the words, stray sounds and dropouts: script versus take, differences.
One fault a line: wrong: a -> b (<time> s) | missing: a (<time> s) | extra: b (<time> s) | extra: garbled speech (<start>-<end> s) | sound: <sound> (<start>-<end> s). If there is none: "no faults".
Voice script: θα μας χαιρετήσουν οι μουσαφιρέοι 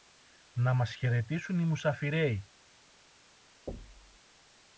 wrong: θα -> να (0.5 s)
sound: thud (3.7-4.2 s)